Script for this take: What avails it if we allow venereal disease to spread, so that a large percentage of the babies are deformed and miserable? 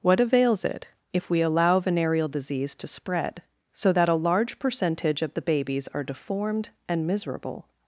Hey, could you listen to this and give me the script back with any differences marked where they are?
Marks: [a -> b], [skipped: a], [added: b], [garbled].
What avails it if we allow venereal disease to spread, so that a large percentage of the babies are deformed and miserable?